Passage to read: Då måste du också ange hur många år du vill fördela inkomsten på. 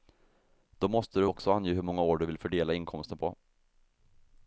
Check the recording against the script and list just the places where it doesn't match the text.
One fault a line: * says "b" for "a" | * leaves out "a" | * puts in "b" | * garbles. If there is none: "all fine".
all fine